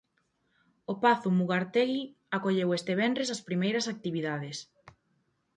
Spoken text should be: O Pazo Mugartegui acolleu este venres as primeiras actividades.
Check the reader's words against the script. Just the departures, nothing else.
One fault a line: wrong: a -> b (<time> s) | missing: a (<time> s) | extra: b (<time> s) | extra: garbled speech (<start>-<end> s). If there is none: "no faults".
no faults